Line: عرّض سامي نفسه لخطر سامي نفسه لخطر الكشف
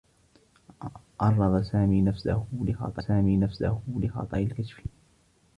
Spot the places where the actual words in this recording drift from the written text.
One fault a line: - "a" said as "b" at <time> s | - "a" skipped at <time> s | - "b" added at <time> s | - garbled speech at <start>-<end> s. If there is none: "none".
none